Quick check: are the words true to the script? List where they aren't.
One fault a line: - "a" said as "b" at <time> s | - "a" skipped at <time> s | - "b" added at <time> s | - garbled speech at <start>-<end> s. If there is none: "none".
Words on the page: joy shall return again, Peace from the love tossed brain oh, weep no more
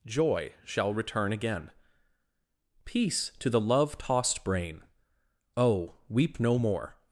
- "from" said as "to" at 3.4 s